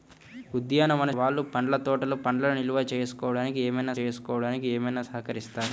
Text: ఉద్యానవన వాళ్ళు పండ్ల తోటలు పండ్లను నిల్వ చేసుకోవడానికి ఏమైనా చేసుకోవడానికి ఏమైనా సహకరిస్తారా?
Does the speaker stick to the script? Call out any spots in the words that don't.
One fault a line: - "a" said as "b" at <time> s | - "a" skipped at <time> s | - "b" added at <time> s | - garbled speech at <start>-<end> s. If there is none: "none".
none